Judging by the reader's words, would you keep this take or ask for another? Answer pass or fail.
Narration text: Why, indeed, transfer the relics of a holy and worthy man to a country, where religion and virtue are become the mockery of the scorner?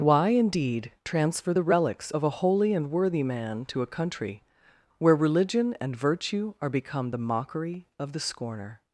pass